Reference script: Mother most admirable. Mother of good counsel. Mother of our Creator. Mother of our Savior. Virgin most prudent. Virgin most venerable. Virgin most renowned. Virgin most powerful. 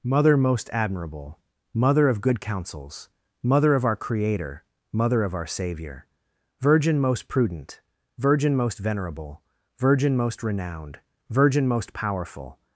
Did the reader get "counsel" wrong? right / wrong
wrong